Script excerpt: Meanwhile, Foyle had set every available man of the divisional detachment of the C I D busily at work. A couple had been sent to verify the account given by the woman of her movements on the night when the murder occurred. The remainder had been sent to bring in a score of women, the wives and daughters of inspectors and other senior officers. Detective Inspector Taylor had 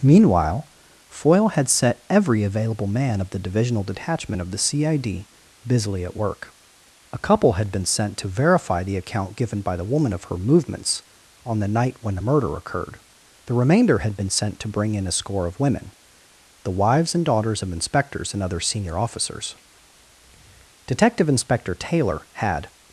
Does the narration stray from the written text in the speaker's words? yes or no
no